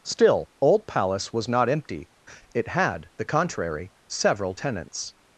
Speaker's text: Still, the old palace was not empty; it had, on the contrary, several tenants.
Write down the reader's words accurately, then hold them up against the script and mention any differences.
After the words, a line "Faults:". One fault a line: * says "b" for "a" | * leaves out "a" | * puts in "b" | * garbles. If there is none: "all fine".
Still, old palace was not empty; it had, the contrary, several tenants.
Faults:
* leaves out "the"
* leaves out "on"